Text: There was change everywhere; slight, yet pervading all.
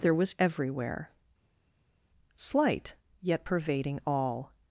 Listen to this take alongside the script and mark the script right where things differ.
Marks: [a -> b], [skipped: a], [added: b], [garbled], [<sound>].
There was [skipped: change] everywhere; slight, yet pervading all.